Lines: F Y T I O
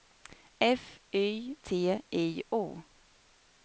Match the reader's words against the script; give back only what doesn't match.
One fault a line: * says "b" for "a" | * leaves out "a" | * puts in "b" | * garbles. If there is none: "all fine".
all fine